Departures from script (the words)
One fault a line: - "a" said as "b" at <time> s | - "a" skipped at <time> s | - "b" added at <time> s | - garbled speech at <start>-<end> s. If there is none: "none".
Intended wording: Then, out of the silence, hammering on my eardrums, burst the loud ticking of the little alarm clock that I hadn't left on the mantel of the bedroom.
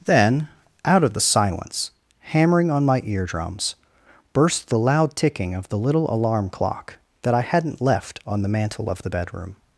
none